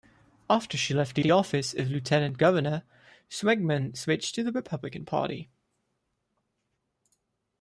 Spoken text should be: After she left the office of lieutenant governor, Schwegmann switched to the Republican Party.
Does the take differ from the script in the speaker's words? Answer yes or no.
yes